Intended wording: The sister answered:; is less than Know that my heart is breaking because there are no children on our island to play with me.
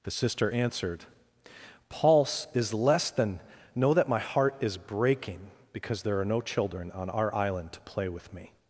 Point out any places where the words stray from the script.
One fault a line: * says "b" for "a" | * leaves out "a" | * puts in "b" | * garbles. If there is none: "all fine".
* puts in "pulse"